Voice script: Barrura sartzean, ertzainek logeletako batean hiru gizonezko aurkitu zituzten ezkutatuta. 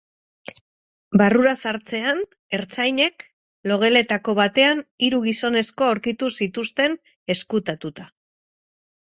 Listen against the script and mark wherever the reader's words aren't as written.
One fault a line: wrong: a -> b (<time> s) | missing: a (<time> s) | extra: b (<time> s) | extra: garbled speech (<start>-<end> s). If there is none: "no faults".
no faults